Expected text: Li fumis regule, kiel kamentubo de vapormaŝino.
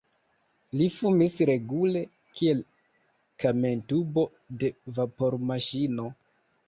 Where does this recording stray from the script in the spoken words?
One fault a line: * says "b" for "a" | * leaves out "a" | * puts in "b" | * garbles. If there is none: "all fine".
all fine